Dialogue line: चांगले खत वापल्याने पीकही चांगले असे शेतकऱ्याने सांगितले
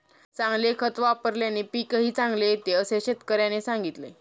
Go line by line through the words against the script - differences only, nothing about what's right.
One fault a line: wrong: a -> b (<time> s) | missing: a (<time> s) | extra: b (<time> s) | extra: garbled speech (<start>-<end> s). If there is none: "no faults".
extra: येते (2.5 s)